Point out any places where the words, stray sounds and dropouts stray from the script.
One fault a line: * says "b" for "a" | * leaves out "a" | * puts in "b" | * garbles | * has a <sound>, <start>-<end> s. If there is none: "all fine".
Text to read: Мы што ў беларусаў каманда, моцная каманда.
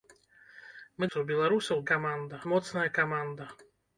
all fine